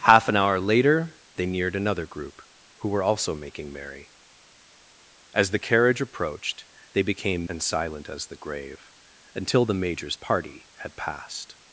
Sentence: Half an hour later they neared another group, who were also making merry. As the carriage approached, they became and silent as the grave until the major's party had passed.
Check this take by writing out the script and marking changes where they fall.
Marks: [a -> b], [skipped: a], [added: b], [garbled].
Half an hour later they neared another group, who were also making merry. As the carriage approached, they became and silent as the grave until the major's party had passed.